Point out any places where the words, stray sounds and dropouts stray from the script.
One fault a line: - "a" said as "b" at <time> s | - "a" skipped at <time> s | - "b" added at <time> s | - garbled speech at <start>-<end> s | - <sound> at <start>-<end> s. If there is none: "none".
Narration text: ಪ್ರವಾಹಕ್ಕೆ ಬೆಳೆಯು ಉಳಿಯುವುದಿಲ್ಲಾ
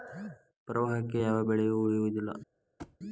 - "ಯಾವ" added at 1.2 s
- thud at 2.8-3.0 s